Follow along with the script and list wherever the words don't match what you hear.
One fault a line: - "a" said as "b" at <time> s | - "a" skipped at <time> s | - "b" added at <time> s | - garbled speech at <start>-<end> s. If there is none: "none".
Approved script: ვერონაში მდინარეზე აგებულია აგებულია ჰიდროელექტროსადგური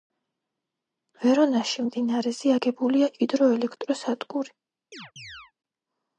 - "აგებულია" skipped at 3.1 s